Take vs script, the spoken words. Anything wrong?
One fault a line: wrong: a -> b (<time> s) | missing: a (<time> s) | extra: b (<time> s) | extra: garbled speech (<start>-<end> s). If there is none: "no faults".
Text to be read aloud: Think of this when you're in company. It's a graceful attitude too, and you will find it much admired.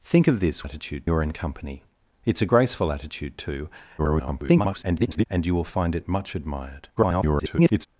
wrong: when -> attitude (0.6 s)
extra: garbled speech (4.0-5.3 s)
extra: garbled speech (7.0-7.9 s)